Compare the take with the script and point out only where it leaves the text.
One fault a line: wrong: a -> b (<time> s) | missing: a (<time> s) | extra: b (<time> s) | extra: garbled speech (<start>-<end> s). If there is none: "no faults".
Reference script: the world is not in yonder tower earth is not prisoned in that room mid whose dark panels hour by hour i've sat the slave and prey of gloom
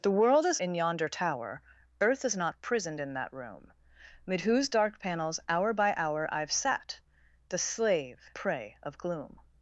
missing: not (0.6 s)
missing: and (8.3 s)